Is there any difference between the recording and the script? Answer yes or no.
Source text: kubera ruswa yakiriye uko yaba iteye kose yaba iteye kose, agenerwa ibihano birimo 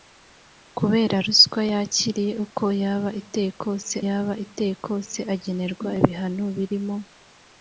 no